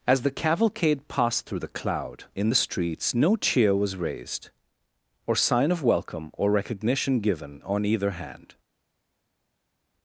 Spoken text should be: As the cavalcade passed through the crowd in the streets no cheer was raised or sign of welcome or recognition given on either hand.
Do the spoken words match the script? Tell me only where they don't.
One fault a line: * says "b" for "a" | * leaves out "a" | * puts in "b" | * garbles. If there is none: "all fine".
* says "cloud" for "crowd"